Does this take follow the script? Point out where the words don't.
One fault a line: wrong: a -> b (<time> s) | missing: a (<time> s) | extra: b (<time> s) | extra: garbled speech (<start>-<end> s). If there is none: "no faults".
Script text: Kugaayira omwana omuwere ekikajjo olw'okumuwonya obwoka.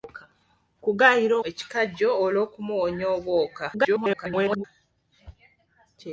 missing: omwana omuwere (1.4 s)
extra: garbled speech (3.7-4.6 s)